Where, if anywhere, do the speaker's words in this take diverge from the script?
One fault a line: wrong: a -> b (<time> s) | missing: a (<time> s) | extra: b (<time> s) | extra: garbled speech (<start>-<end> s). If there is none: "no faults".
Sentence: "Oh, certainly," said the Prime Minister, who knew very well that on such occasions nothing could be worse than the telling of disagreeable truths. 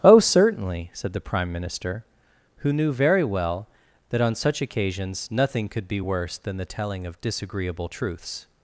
no faults